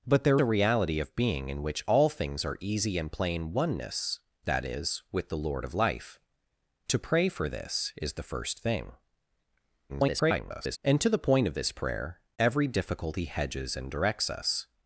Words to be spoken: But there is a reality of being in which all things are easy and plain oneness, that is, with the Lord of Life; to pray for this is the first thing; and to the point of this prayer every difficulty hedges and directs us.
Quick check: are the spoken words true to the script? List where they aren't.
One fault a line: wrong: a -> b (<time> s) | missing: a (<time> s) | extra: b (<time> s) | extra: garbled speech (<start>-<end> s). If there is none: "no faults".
missing: is (0.4 s)
extra: garbled speech (9.9-10.8 s)